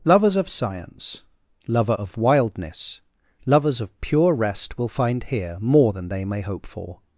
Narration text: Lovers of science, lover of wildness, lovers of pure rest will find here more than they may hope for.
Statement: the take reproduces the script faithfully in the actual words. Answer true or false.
true